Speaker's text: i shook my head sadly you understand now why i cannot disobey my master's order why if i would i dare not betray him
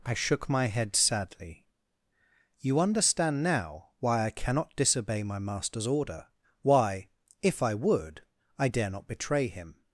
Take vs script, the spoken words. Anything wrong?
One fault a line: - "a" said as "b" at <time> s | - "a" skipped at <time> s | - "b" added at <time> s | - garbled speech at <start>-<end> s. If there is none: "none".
none